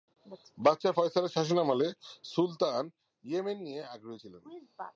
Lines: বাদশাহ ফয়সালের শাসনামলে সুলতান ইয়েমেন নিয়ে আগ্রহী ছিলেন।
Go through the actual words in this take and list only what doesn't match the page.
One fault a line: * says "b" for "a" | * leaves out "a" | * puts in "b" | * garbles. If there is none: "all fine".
all fine